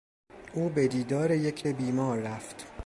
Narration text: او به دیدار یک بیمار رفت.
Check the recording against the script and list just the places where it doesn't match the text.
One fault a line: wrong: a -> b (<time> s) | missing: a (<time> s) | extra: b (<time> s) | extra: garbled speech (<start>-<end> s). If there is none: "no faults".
no faults